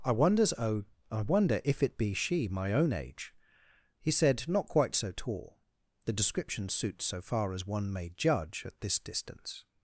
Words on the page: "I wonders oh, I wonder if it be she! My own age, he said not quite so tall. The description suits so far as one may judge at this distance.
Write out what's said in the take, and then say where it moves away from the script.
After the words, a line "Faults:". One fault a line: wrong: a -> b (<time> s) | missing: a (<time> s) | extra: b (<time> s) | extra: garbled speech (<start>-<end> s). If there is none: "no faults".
"I wonders oh, I wonder if it be she! My own age, he said not quite so tall. The description suits so far as one may judge at this distance.
Faults:
no faults